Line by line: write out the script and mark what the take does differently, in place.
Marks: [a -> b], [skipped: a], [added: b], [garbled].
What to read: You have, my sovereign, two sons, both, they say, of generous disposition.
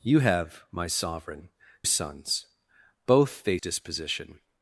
You have, my sovereign, [skipped: two] sons, both, they [skipped: say, of generous] disposition.